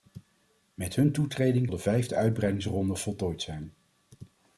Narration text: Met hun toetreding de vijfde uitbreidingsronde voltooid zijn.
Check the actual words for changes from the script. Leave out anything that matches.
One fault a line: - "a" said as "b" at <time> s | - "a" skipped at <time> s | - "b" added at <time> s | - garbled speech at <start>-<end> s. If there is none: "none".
none